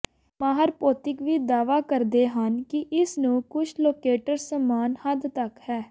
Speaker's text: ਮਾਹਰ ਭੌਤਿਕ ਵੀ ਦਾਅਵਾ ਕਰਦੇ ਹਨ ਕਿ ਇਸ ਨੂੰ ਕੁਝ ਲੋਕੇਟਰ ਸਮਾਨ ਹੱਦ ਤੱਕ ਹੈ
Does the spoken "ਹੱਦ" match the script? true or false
true